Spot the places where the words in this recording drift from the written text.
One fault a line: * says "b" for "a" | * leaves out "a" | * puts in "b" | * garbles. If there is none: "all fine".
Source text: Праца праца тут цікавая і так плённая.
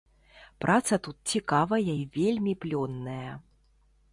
* leaves out "праца"
* says "вельмі" for "так"